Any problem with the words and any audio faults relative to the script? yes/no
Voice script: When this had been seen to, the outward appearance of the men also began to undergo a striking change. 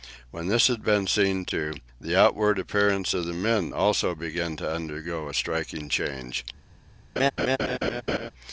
yes